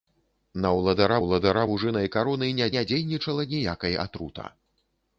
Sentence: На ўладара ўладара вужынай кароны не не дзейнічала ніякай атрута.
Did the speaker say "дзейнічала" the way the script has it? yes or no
yes